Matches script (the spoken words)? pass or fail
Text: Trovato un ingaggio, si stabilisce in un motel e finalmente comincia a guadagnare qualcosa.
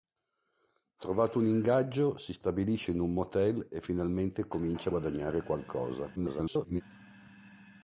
fail